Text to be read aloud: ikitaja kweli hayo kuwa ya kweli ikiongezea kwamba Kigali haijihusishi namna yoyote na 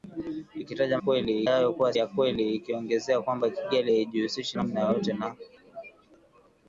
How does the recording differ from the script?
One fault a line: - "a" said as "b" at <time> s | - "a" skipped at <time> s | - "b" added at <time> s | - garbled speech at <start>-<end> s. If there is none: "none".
none